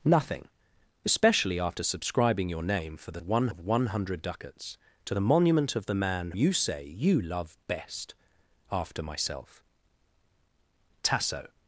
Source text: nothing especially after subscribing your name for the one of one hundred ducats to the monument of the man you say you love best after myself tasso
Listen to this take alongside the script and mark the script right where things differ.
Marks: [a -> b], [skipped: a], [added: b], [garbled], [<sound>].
nothing especially after subscribing your name for the one of one hundred ducats to the monument of the man you say you love best after myself tasso